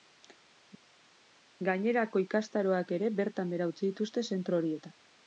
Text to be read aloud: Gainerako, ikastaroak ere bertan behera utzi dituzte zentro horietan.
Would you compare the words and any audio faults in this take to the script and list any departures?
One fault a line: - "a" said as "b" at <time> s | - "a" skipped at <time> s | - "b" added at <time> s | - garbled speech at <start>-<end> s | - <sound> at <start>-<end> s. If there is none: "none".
none